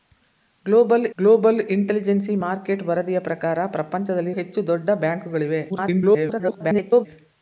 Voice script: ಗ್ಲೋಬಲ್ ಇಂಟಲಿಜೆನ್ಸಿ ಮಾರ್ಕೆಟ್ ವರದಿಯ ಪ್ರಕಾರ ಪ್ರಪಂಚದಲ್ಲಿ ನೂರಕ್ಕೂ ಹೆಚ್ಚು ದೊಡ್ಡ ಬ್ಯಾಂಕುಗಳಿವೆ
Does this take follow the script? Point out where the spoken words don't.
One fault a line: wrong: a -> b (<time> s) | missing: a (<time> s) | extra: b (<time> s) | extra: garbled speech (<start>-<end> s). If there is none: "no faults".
extra: ಗ್ಲೋಬಲ್ (1.2 s)
missing: ನೂರಕ್ಕೂ (4.3 s)
extra: garbled speech (5.7-7.1 s)